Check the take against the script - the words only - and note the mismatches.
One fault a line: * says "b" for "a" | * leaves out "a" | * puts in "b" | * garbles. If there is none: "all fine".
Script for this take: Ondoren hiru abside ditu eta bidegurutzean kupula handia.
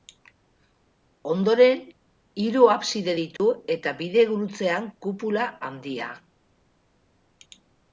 all fine